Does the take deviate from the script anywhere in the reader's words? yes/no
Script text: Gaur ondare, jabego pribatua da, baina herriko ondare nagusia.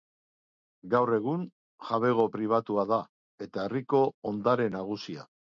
yes